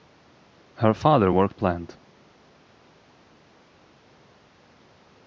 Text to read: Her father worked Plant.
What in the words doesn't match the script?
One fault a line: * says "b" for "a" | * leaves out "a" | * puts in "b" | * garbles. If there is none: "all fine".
all fine